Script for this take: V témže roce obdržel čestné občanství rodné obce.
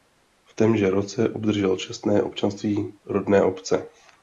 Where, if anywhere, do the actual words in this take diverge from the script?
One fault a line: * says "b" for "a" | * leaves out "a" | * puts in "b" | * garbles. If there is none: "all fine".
all fine